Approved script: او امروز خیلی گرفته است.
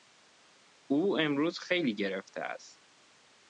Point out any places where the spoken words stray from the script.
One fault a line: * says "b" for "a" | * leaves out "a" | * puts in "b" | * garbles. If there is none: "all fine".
all fine